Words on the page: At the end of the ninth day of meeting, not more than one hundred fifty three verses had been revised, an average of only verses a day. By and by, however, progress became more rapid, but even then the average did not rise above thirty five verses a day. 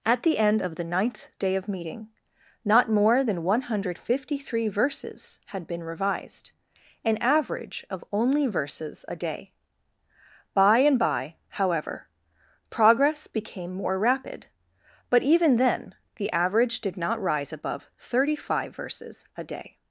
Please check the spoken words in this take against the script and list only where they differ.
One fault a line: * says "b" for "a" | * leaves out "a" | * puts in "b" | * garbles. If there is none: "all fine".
all fine